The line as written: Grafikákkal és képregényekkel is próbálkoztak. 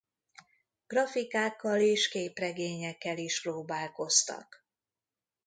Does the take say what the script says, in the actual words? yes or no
yes